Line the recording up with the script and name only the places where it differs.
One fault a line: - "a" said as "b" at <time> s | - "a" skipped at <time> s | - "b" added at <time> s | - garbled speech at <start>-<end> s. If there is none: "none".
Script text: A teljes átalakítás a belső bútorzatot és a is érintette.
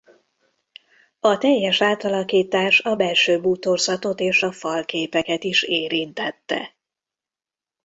- "falképeket" added at 4.5 s